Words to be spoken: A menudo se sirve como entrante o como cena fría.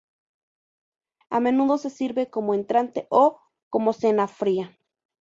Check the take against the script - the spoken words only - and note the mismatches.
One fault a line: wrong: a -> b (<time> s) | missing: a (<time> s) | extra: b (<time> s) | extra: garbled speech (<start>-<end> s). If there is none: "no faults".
no faults